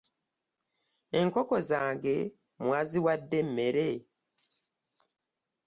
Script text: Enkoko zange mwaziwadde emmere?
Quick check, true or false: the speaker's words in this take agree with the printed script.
true